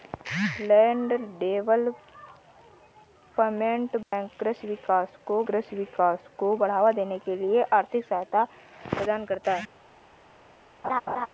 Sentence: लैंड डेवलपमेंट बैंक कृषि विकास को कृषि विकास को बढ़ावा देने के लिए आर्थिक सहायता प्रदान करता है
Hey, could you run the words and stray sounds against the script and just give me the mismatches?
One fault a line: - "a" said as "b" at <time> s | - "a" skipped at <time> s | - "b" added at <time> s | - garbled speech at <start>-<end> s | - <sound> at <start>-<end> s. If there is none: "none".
- dropout at 4.0-4.1 s
- laugh at 10.8-11.3 s